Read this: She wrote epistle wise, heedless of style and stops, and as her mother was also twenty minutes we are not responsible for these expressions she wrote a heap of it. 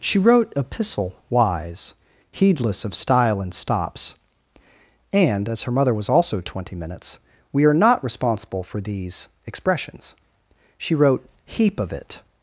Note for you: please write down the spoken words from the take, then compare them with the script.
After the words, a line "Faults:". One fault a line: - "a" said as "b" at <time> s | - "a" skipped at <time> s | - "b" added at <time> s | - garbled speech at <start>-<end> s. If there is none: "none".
She wrote epistle wise, heedless of style and stops, and as her mother was also twenty minutes we are not responsible for these expressions she wrote heap of it.
Faults:
- "a" skipped at 11.3 s